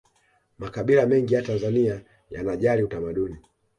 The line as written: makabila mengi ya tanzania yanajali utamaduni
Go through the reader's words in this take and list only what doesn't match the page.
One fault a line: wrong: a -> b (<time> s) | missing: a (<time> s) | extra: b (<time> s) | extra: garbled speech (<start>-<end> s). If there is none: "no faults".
no faults